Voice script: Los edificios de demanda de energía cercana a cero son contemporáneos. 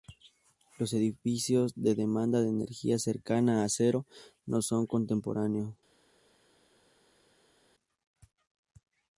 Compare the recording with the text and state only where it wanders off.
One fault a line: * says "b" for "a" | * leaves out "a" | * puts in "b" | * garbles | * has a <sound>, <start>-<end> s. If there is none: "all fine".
* puts in "no"